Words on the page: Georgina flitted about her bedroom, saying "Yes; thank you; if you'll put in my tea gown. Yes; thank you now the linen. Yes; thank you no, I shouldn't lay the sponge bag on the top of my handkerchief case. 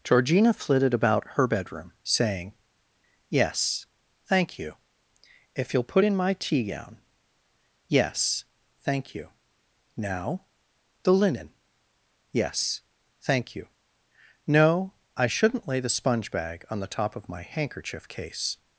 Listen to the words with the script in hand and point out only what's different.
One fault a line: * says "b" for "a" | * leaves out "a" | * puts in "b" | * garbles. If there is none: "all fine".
all fine